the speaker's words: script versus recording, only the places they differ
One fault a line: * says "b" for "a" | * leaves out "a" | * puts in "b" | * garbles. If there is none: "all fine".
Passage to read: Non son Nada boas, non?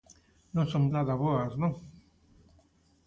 all fine